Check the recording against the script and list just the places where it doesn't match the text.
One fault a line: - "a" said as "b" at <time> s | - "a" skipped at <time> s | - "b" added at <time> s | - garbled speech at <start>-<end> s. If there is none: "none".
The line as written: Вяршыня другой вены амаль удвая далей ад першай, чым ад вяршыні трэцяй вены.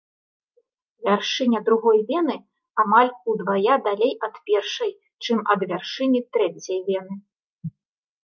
none